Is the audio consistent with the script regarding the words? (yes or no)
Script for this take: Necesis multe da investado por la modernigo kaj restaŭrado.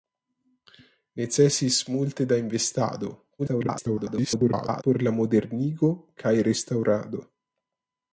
no